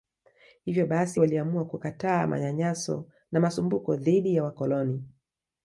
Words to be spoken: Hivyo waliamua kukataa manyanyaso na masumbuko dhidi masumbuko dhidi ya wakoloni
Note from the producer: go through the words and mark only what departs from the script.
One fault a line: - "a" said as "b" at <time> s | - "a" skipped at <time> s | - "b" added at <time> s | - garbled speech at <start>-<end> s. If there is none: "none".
- "basi" added at 0.9 s
- "masumbuko dhidi" skipped at 4.4 s